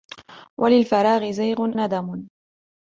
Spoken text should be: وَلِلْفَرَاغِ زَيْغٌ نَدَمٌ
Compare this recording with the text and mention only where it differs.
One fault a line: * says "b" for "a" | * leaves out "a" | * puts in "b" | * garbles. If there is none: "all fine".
all fine